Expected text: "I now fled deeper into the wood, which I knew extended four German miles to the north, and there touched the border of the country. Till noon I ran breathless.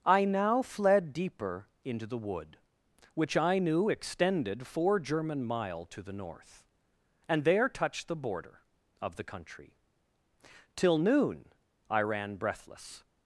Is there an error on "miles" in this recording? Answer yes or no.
yes